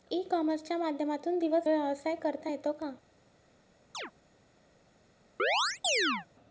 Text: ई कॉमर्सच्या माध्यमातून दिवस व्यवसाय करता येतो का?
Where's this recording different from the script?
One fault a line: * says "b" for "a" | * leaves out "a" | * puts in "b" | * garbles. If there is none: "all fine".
all fine